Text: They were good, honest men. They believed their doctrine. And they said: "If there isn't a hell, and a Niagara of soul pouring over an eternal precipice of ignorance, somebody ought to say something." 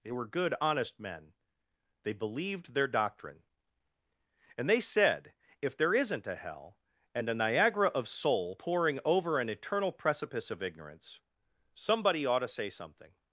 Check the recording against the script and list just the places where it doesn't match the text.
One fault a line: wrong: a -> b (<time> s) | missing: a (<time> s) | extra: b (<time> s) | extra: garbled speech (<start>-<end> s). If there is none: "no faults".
no faults